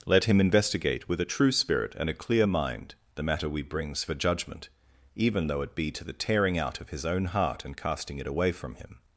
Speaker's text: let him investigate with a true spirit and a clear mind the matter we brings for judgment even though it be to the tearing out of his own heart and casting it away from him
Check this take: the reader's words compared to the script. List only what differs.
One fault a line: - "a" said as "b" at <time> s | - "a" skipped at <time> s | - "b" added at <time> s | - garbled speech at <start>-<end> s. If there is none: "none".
none